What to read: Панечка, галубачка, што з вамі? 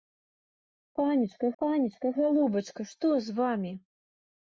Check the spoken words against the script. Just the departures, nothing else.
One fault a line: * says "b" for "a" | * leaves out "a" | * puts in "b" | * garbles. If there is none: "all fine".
* puts in "панечка"